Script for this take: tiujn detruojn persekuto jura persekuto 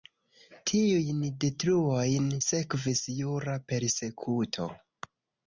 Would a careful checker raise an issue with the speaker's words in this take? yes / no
yes